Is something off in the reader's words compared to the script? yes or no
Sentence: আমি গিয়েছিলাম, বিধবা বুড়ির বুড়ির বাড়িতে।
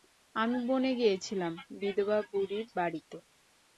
yes